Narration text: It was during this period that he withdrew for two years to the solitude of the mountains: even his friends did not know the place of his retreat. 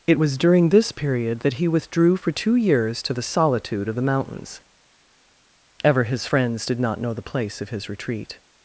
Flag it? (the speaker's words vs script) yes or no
yes